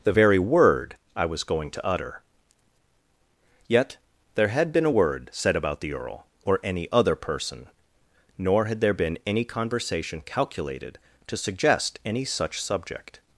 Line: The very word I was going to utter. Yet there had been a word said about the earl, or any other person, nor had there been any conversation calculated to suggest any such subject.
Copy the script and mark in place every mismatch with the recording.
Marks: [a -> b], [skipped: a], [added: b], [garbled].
The very word I was going to utter. Yet there had been a word said about the earl, or any other person, nor had there been any conversation calculated to suggest any such subject.